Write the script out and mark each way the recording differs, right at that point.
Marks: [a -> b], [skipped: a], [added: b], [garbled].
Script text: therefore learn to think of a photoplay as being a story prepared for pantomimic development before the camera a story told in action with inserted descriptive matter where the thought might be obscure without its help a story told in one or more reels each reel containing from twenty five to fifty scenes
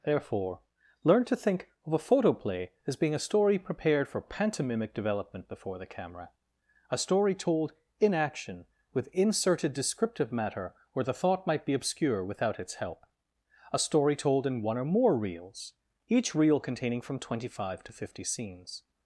therefore learn to think of a photoplay as being a story prepared for pantomimic development before the camera a story told in action with inserted descriptive matter where the thought might be obscure without its help a story told in one or more reels each reel containing from twenty five to fifty scenes